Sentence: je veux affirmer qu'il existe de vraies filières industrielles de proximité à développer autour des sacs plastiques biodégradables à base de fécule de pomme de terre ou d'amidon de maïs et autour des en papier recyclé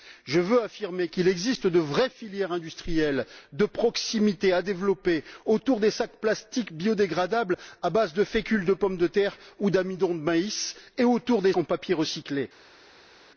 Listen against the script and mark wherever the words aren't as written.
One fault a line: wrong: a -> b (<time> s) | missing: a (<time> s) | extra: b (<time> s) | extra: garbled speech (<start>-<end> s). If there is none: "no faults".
no faults